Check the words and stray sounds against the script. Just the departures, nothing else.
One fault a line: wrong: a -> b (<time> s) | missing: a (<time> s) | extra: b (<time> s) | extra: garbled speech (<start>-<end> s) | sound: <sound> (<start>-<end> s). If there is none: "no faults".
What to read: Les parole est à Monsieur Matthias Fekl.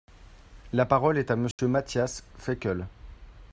wrong: Les -> La (0.7 s)
sound: dropout (1.5-1.6 s)